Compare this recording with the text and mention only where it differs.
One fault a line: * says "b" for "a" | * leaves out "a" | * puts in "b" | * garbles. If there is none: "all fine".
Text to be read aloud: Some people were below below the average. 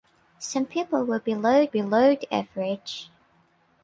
all fine